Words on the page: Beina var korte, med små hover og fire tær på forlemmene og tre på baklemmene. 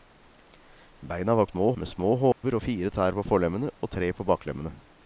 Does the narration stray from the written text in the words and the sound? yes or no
yes